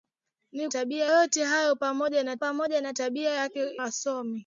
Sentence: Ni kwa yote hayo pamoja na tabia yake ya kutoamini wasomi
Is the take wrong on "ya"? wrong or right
wrong